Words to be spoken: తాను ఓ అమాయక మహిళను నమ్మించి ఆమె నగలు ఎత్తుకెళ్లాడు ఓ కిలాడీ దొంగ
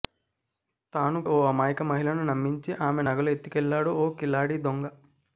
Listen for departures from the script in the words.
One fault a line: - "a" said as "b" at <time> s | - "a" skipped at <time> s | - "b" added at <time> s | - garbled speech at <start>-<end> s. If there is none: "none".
none